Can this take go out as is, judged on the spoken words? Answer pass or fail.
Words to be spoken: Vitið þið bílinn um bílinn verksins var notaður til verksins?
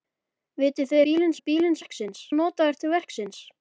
pass